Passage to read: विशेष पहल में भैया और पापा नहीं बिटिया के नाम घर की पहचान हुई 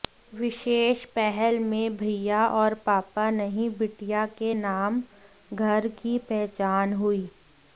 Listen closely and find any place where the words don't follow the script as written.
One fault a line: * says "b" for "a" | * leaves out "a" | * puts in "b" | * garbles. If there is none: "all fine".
all fine